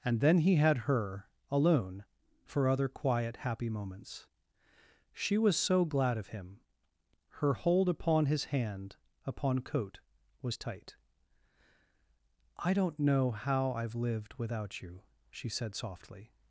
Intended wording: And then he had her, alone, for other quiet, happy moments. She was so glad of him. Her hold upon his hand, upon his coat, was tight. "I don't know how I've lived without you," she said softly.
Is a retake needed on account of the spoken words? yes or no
yes